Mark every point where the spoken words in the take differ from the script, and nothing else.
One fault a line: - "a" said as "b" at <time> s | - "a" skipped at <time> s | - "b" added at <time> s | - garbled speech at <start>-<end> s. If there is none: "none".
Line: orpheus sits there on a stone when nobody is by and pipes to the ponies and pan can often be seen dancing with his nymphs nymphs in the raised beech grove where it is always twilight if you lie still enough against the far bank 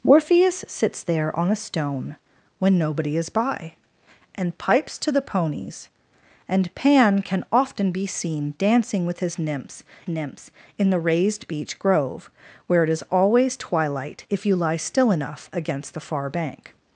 none